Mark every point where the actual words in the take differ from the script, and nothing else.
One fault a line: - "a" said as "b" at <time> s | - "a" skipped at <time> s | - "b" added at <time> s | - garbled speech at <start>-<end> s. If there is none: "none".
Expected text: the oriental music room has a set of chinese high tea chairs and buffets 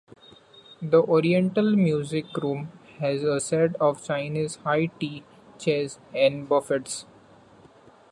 none